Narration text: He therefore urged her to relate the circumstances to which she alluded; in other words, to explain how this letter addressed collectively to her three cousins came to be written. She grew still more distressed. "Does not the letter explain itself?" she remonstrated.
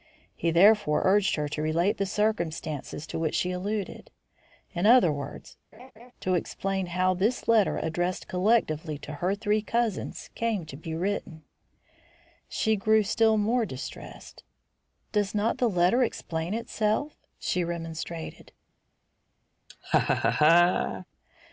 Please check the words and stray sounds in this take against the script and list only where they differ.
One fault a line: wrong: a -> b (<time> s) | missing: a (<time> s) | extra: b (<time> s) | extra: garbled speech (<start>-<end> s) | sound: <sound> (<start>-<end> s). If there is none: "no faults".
sound: laugh (5.7-6.1 s)
sound: laugh (19.7-21.1 s)